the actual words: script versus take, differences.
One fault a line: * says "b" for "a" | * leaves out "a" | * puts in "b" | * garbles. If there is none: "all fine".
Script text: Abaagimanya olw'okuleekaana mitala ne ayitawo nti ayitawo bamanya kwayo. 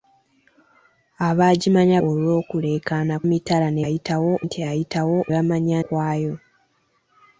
all fine